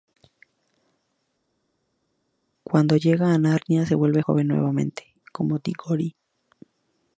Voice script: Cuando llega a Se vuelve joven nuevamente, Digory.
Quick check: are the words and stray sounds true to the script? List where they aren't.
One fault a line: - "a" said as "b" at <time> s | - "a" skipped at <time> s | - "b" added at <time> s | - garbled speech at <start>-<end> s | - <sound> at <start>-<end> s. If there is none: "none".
- "Narnia" added at 3.4 s
- "como" added at 5.3 s